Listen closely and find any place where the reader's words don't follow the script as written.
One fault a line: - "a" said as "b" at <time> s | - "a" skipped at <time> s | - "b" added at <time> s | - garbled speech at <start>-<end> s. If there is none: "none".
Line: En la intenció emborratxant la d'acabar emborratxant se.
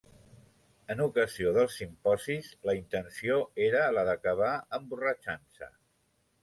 - "ocasió dels simposis" added at 1.0 s
- "emborratxant" said as "era" at 3.7 s